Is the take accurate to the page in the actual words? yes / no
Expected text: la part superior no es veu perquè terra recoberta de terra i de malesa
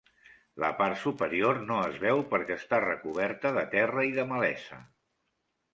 no